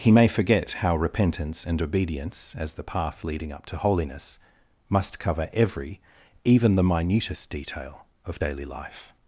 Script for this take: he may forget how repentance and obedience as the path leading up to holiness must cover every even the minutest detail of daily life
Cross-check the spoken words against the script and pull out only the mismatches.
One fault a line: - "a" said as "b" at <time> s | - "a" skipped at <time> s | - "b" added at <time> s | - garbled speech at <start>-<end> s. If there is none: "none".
none